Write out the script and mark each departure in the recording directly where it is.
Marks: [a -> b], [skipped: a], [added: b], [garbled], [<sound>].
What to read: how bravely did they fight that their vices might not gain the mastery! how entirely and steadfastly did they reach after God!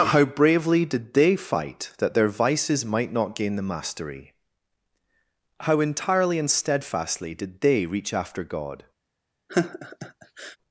how bravely did they fight that their vices might not gain the mastery! how entirely and steadfastly did they reach after God! [laugh]